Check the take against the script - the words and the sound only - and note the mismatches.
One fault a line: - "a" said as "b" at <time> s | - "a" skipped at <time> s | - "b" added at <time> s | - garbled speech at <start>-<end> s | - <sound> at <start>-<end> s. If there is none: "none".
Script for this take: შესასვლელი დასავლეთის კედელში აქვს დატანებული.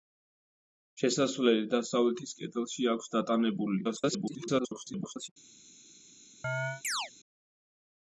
- garbled speech at 3.8-5.3 s
- chirp at 6.4-7.1 s